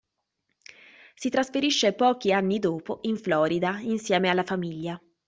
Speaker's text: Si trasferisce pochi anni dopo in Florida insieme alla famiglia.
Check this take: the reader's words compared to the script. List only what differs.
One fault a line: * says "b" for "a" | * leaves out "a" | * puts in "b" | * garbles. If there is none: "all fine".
all fine